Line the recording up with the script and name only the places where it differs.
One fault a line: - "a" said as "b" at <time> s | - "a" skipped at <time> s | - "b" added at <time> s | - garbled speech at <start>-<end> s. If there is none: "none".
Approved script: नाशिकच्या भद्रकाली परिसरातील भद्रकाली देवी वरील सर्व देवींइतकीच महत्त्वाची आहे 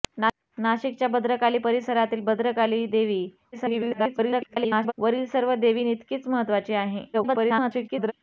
- garbled speech at 3.5-4.9 s
- garbled speech at 7.1-8.1 s